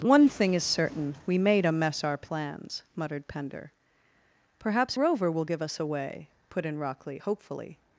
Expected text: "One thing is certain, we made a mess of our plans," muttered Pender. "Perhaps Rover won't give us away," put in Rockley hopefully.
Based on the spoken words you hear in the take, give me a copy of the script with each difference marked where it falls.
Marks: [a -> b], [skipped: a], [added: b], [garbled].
"One thing is certain, we made a mess [skipped: of] our plans," muttered Pender. "Perhaps Rover [won't -> will] give us away," put in Rockley hopefully.